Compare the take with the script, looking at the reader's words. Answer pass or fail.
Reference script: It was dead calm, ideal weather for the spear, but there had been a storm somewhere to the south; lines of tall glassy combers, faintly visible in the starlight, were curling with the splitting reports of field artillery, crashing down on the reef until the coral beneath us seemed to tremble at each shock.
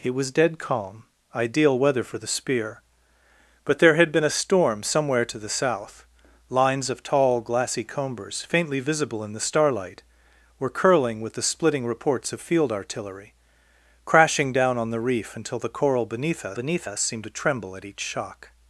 fail